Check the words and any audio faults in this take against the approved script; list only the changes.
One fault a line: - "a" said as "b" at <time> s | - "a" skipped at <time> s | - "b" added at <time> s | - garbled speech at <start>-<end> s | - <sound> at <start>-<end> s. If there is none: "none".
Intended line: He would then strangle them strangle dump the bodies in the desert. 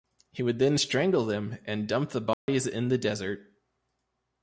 - "strangle" said as "and" at 1.6 s
- dropout at 2.3-2.5 s